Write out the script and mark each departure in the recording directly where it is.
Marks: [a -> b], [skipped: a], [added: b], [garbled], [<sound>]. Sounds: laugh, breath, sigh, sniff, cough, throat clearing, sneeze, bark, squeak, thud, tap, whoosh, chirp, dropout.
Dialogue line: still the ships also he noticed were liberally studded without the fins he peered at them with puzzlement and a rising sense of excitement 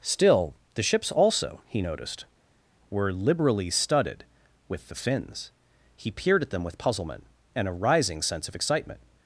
still the ships also he noticed were liberally studded [without -> with] the fins he peered at them with puzzlement and a rising sense of excitement